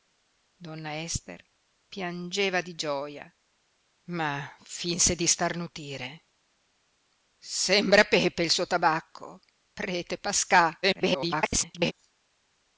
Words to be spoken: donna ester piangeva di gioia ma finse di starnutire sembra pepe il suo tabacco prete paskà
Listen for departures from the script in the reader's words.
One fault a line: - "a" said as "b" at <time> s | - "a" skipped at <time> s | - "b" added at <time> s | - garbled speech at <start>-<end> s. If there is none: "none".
- garbled speech at 10.8-11.9 s